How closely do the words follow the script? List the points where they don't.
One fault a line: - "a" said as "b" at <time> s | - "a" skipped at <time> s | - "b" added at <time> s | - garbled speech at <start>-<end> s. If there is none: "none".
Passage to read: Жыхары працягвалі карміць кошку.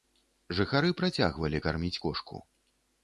none